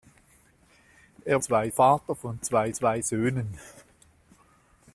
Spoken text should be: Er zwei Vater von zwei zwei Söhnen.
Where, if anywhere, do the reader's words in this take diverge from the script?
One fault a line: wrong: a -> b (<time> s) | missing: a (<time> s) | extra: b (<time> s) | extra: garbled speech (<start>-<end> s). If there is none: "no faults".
no faults